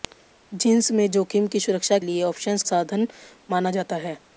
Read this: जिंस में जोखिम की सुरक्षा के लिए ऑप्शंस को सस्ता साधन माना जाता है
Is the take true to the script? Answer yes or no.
no